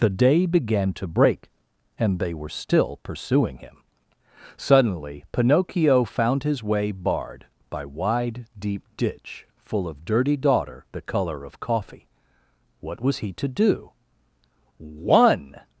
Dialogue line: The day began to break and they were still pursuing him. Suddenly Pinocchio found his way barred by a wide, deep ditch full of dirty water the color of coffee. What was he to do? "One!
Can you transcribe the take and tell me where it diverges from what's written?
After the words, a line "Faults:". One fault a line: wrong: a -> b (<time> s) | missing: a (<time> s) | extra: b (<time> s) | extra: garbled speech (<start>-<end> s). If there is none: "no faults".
The day began to break and they were still pursuing him. Suddenly Pinocchio found his way barred by wide, deep ditch full of dirty daughter the color of coffee. What was he to do? "One!
Faults:
missing: a (7.8 s)
wrong: water -> daughter (10.3 s)